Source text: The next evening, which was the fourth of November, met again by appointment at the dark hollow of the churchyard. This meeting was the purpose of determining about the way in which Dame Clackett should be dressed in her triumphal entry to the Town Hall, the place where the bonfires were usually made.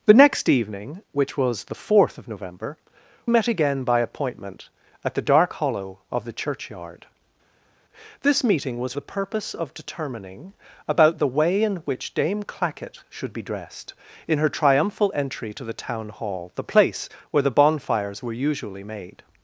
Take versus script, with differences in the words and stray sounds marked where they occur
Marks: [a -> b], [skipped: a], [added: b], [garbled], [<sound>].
The next evening, which was the fourth of November, met again by appointment at the dark hollow of the churchyard. This meeting was the purpose of determining about the way in which Dame Clackett should be dressed in her triumphal entry to the Town Hall, the place where the bonfires were usually made.